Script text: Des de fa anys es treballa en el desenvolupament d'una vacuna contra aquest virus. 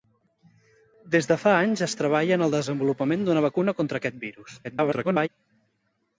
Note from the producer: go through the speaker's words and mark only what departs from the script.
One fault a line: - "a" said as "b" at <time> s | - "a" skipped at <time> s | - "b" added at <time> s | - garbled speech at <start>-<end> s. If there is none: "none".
- garbled speech at 4.6-5.3 s